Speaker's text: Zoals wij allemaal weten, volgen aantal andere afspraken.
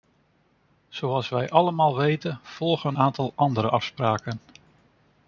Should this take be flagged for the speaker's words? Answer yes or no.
no